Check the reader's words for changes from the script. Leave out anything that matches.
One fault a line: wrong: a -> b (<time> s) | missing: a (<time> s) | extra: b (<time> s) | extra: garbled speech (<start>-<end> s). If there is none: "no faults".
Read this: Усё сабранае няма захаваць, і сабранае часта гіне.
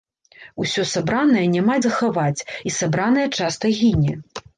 no faults